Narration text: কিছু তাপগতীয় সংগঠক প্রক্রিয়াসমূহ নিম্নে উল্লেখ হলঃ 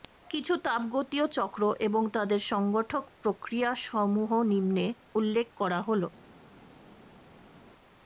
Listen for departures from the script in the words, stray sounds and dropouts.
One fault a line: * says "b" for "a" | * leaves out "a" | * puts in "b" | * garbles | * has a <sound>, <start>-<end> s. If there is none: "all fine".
* puts in "চক্র এবং তাদের"
* puts in "করা"